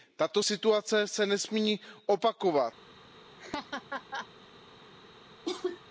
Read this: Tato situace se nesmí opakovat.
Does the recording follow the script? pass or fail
pass